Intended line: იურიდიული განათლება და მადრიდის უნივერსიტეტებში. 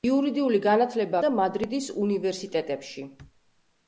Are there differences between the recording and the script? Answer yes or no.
no